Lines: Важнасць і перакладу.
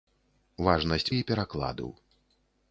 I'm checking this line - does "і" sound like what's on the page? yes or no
yes